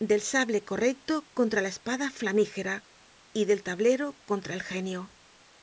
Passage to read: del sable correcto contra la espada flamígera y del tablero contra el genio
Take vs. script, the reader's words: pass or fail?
pass